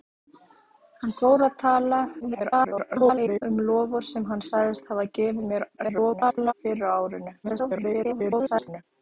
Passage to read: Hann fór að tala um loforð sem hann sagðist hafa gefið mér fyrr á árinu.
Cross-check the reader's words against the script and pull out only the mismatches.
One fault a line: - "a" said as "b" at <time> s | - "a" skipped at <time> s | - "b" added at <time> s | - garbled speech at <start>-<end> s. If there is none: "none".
- garbled speech at 2.2-3.4 s
- garbled speech at 5.8-6.5 s
- garbled speech at 7.4-8.8 s